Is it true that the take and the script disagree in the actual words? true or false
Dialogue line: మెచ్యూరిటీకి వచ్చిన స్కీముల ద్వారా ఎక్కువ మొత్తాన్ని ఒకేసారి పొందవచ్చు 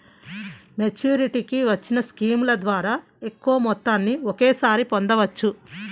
false